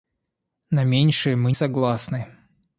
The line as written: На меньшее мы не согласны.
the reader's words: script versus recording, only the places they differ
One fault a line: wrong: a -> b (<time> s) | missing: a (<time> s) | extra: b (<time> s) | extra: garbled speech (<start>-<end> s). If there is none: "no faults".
missing: не (1.5 s)